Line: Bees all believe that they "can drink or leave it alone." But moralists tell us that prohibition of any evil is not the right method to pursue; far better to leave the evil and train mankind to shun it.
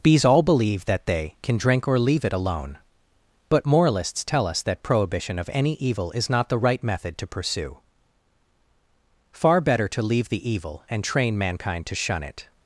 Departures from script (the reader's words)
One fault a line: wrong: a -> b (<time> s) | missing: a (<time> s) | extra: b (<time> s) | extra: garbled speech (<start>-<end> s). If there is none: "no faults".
no faults